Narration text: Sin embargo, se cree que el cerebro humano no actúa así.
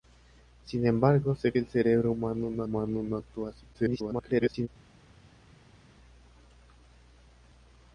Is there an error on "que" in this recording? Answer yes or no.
yes